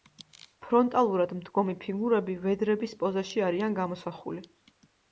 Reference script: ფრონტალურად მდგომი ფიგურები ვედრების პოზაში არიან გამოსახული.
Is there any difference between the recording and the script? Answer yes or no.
no